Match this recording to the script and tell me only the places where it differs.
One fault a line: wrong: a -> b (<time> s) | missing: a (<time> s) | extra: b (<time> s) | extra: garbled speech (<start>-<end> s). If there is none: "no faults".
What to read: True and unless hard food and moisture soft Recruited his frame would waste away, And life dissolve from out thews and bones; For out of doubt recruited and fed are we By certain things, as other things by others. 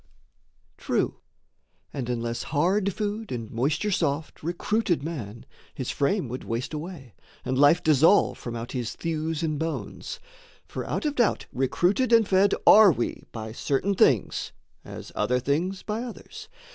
extra: man (5.0 s)
extra: his (8.7 s)